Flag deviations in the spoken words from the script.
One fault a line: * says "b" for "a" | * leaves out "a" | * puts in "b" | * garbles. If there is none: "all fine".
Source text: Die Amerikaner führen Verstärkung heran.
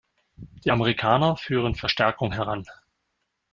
all fine